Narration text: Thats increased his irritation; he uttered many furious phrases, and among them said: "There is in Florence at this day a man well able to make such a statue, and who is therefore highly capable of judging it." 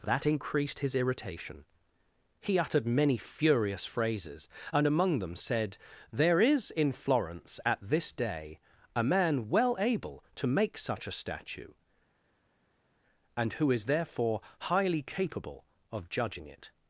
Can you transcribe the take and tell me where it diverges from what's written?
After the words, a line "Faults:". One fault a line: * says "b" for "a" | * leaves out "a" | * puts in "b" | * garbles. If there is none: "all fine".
That increased his irritation; he uttered many furious phrases, and among them said: "There is in Florence at this day a man well able to make such a statue, and who is therefore highly capable of judging it."
Faults:
* says "That" for "Thats"